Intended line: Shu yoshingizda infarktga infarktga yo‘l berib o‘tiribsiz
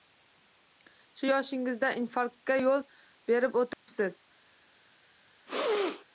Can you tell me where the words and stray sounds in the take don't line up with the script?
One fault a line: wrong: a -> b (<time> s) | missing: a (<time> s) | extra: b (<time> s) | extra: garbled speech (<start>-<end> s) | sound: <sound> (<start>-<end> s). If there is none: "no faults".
missing: infarktga (2.6 s)
sound: dropout (3.7-3.9 s)
sound: sneeze (5.5-6.1 s)